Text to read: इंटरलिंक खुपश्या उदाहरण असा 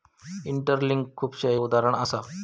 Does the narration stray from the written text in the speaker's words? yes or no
no